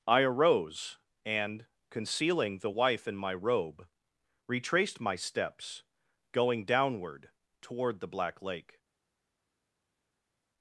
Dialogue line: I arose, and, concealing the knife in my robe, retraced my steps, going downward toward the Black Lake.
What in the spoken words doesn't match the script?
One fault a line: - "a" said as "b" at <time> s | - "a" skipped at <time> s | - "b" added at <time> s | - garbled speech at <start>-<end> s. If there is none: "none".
- "knife" said as "wife" at 2.7 s